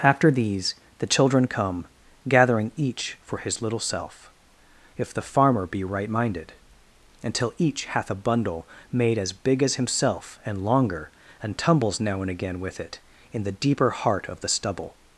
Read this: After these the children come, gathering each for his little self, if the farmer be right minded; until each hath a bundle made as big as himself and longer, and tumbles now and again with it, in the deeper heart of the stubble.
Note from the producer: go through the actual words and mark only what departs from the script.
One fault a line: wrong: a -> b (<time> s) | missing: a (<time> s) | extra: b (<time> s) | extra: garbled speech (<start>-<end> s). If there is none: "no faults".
no faults